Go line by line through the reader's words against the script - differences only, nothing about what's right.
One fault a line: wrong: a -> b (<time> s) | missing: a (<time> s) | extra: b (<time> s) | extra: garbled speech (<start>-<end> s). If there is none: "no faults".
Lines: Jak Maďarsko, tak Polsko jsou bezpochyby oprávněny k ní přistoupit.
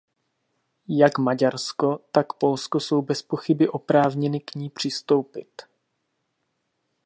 no faults